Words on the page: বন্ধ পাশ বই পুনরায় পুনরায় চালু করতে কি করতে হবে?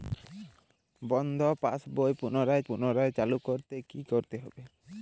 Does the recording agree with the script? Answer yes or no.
yes